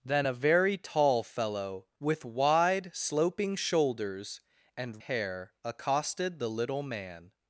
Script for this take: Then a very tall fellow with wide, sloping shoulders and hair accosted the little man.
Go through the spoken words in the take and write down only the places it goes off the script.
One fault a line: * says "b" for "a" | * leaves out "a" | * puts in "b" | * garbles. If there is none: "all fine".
all fine